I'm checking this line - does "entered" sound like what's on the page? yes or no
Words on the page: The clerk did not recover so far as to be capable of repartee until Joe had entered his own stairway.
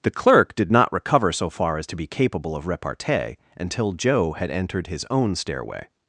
yes